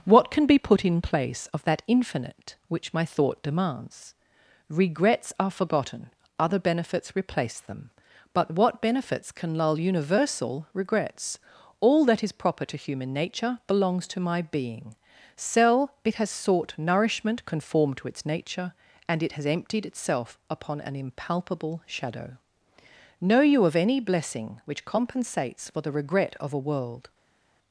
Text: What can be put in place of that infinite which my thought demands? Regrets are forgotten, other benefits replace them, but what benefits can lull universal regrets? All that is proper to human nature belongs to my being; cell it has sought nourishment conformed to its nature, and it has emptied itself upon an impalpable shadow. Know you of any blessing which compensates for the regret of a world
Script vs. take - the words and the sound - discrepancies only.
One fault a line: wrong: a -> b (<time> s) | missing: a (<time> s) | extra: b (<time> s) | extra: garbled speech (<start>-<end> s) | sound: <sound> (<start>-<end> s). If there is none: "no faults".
no faults